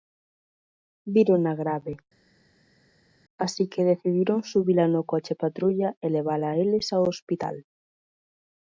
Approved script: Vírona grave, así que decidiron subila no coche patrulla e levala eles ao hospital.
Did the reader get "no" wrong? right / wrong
right